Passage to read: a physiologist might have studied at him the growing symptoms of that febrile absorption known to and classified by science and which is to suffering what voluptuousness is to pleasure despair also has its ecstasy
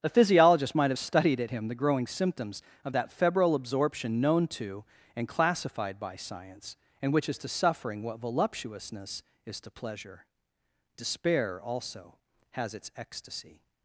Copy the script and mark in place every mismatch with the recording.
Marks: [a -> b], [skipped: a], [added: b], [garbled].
a physiologist might have studied at him the growing symptoms of that febrile absorption known to and classified by science and which is to suffering what voluptuousness is to pleasure despair also has its ecstasy